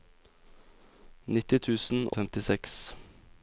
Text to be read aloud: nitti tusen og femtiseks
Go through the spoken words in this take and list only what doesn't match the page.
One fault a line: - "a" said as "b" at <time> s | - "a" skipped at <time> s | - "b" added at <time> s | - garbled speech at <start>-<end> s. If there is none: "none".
none